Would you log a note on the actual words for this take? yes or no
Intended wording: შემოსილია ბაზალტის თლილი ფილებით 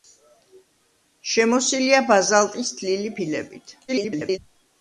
yes